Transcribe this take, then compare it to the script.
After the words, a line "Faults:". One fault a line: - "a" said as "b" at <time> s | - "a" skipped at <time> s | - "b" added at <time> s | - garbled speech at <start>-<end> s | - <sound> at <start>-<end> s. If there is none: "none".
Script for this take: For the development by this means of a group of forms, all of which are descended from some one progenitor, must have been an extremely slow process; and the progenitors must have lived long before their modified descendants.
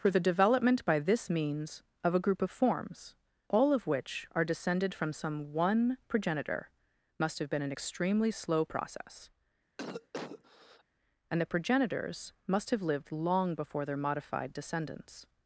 For the development by this means of a group of forms, all of which are descended from some one progenitor, must have been an extremely slow process; and the progenitors must have lived long before their modified descendants.
Faults:
- cough at 9.8-10.8 s